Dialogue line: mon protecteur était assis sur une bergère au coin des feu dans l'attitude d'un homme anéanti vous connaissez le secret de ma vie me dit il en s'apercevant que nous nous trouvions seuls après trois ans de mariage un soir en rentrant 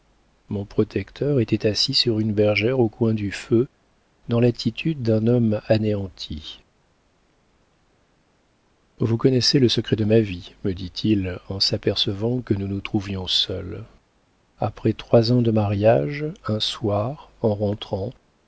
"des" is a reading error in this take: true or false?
true